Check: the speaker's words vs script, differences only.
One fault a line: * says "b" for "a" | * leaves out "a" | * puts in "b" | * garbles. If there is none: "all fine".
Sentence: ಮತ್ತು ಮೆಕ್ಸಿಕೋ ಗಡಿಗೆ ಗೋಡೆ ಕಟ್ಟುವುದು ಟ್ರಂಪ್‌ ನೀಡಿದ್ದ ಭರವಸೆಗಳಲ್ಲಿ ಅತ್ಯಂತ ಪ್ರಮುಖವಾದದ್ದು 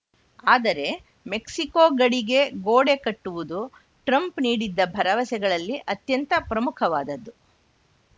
* says "ಆದರೆ" for "ಮತ್ತು"